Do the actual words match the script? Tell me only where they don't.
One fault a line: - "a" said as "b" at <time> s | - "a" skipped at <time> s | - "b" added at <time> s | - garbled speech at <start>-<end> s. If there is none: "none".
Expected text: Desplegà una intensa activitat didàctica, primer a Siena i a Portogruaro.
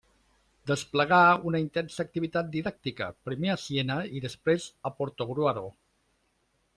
- "després" added at 4.3 s